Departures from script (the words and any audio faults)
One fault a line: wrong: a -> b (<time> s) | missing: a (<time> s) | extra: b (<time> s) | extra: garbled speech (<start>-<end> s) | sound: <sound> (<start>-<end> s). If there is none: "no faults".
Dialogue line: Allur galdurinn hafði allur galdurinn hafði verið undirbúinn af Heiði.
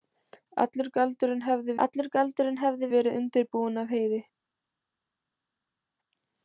no faults